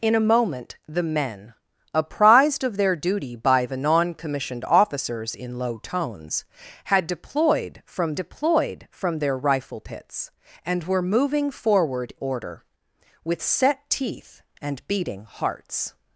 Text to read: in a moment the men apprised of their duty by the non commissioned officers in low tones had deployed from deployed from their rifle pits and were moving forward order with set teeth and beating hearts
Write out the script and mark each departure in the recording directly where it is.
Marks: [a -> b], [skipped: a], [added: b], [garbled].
in a moment the men apprised of their duty by the non commissioned officers in low tones had deployed from deployed from their rifle pits and were moving forward order with set teeth and beating hearts